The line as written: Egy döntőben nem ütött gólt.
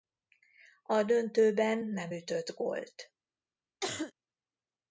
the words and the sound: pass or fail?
fail